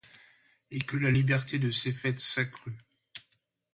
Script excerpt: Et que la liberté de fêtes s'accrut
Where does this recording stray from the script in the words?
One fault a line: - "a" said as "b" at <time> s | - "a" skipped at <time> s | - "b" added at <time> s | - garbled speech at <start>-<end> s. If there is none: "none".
- "ces" added at 1.7 s